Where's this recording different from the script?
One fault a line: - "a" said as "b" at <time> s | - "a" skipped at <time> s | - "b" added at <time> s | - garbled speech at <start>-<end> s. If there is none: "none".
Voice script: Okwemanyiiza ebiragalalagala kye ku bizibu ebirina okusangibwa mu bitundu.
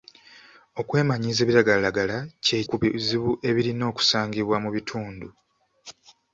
none